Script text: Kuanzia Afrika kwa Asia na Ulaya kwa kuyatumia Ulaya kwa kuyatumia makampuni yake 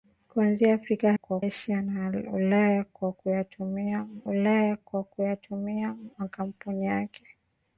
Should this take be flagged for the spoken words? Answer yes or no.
no